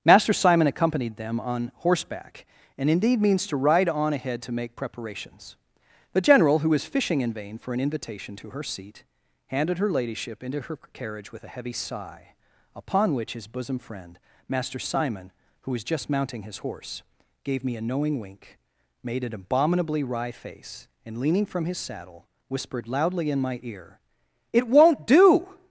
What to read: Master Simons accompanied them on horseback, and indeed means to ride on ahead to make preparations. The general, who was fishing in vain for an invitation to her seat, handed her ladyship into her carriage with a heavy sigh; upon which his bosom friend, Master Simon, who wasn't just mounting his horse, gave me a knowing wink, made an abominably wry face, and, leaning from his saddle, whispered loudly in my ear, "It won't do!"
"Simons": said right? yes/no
no